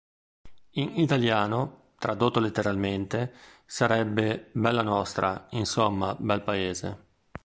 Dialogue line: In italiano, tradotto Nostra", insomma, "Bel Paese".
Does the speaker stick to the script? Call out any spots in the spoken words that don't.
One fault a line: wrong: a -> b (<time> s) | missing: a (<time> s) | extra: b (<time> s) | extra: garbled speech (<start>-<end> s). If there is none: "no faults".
extra: letteralmente sarebbe Bella (2.4 s)